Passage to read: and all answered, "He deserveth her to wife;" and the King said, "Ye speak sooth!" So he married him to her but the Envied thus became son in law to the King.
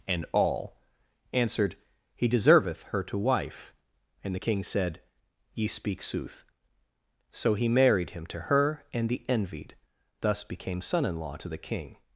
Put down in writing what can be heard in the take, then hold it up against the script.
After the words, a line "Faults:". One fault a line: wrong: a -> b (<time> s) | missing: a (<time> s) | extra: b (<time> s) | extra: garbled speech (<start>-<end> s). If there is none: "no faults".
and all answered, "He deserveth her to wife;" and the King said, "Ye speak sooth!" So he married him to her and the Envied thus became son in law to the King.
Faults:
wrong: but -> and (8.9 s)